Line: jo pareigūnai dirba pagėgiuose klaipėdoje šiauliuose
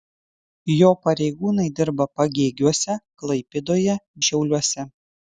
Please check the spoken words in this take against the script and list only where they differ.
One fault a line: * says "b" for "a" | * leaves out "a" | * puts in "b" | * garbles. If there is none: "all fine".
all fine